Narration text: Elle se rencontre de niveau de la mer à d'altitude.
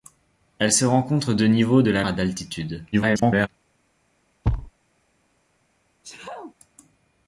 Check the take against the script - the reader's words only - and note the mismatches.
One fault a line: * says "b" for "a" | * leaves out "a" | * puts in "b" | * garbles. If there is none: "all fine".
* leaves out "mer"
* garbles